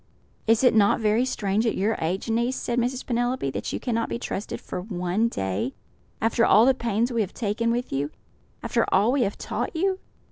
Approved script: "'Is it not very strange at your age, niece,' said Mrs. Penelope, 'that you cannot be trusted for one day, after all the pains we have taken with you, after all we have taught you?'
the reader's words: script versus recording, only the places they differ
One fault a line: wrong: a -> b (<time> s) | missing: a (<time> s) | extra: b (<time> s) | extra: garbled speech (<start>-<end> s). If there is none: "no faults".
no faults